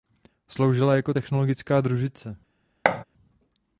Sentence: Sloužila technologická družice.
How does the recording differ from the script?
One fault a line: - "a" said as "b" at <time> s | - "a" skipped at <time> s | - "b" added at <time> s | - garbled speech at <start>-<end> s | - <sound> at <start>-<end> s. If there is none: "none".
- "jako" added at 0.9 s
- thud at 2.8-3.0 s